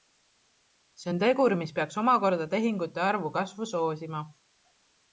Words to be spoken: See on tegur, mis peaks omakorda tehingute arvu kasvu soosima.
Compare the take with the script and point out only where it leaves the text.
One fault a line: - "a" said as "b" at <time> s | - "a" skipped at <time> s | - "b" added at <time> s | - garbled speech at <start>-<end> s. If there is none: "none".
none